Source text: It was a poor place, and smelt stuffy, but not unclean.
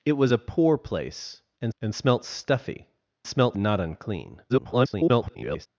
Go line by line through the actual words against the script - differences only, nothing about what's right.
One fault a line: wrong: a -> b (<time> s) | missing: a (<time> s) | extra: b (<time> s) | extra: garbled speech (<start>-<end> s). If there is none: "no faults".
extra: and (1.8 s)
wrong: but -> smelt (3.3 s)
extra: garbled speech (4.5-5.7 s)